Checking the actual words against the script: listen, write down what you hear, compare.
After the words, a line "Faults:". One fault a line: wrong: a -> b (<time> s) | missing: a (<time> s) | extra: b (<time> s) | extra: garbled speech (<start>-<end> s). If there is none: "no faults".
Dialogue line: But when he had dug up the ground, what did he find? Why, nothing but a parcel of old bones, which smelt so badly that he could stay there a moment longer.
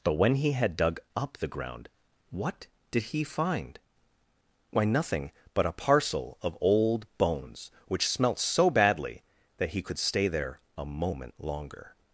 But when he had dug up the ground, what did he find? Why, nothing but a parcel of old bones, which smelt so badly that he could stay there a moment longer.
Faults:
no faults